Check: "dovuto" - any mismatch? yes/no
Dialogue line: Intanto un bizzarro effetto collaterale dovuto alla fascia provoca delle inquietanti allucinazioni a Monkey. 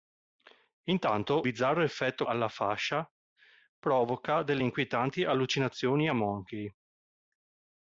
yes